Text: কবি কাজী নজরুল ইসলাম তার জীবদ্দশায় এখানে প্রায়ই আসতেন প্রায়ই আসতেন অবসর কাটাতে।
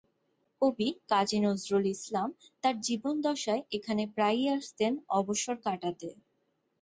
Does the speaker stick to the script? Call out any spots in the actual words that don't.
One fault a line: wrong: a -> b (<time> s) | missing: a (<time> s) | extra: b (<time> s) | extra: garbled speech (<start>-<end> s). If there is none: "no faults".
missing: প্রায়ই আসতেন (4.9 s)